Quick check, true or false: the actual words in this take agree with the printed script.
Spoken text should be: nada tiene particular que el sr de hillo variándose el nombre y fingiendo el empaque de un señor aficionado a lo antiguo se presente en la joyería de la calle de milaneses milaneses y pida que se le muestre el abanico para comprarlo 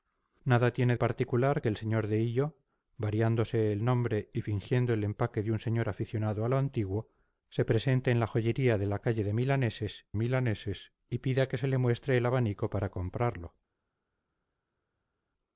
true